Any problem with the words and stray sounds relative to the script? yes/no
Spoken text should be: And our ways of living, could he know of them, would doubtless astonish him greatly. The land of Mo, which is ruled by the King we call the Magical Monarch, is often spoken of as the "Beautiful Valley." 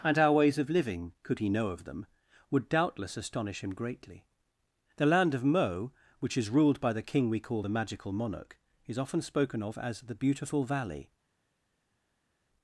no